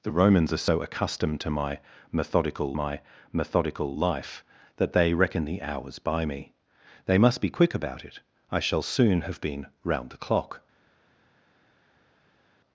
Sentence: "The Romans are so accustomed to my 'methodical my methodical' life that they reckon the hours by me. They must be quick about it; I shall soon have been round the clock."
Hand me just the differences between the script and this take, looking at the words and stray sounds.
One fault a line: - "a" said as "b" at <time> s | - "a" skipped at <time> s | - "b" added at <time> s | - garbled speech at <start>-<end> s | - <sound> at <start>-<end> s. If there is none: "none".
none